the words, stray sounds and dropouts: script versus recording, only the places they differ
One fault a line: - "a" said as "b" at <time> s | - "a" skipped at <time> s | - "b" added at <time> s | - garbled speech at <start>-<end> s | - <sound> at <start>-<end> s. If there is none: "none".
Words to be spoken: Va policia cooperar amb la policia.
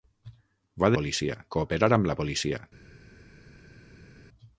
none